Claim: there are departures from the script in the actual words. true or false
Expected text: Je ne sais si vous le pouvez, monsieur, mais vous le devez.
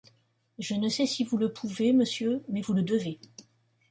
false